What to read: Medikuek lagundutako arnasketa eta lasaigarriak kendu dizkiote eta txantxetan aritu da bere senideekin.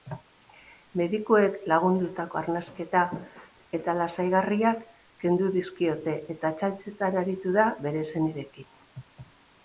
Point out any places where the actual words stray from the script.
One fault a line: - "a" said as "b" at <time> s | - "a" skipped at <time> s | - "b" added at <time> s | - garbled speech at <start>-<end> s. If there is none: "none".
none